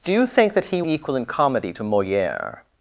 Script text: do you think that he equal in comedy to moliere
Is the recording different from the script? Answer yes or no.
no